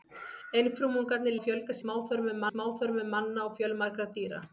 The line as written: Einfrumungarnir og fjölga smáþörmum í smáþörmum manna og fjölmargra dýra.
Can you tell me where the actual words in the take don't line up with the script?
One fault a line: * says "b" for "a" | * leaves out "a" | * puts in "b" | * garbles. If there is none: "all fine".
all fine